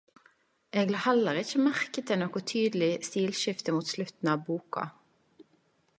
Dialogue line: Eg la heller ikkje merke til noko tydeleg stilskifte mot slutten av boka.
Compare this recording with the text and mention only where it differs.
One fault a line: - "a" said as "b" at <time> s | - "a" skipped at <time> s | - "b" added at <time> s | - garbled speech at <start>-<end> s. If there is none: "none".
none